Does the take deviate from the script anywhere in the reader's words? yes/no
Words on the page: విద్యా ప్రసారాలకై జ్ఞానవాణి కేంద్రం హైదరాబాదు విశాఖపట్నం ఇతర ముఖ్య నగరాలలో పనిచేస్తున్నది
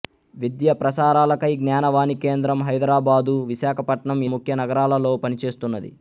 yes